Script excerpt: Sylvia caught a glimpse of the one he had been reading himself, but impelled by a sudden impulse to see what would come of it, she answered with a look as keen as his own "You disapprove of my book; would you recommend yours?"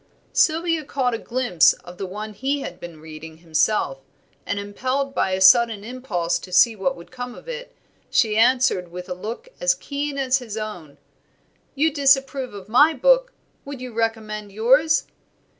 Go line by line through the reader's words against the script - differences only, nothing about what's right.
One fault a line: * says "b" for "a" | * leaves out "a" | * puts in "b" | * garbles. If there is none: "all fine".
* says "and" for "but"